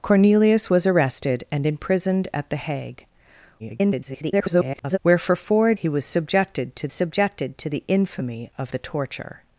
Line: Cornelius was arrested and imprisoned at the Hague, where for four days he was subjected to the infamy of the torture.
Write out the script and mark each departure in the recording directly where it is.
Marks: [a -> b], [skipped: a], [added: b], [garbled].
Cornelius was arrested and imprisoned at the Hague, [garbled] where for four [skipped: days] he was subjected to [added: subjected to] the infamy of the torture.